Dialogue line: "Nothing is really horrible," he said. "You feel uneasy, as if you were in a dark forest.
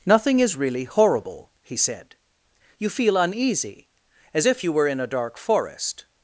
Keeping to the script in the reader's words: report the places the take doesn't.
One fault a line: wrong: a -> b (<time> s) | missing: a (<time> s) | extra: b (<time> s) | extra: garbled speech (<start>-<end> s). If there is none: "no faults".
no faults